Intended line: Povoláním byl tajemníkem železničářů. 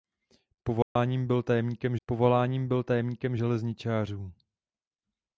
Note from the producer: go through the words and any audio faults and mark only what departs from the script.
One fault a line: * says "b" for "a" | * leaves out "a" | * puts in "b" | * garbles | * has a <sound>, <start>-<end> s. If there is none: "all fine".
* has a dropout, 0.8-1.0 s
* puts in "povoláním byl tajemníkem"